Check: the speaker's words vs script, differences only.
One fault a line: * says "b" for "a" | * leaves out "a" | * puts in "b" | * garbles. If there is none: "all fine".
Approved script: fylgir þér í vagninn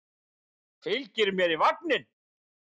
* says "mér" for "þér"